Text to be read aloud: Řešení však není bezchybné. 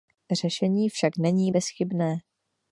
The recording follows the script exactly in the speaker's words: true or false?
true